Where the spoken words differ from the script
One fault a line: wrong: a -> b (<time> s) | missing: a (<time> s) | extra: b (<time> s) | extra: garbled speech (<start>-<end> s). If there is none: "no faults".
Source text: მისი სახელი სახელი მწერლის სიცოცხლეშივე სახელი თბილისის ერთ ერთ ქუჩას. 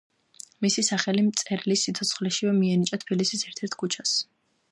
missing: სახელი (1.2 s)
wrong: სახელი -> მიენიჭა (2.6 s)